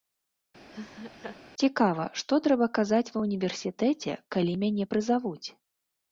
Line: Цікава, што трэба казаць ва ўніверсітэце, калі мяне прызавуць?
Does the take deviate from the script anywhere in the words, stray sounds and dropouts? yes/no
yes